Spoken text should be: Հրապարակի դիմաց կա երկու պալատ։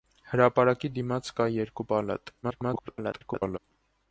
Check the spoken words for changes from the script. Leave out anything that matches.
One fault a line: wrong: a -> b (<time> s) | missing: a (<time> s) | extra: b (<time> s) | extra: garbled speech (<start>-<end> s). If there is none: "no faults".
extra: garbled speech (2.4-3.6 s)